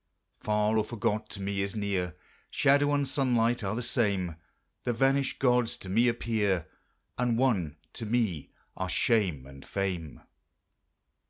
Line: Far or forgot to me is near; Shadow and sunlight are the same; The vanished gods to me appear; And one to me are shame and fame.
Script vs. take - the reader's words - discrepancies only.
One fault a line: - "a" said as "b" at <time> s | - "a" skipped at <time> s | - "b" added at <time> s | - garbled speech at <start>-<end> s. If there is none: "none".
none